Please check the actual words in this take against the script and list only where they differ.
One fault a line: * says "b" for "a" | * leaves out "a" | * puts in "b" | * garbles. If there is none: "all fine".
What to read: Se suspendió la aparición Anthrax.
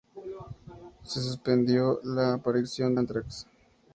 all fine